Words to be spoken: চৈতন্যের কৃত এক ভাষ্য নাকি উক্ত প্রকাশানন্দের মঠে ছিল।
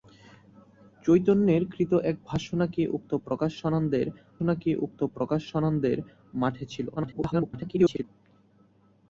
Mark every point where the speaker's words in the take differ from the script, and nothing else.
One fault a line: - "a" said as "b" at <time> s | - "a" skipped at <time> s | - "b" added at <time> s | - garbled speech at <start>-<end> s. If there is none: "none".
- "নাকি উক্ত প্রকাশানন্দের" added at 4.4 s
- garbled speech at 7.0-8.0 s